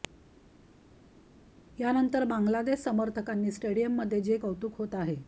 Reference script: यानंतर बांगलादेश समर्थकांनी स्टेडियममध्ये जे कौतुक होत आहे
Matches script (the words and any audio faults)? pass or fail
pass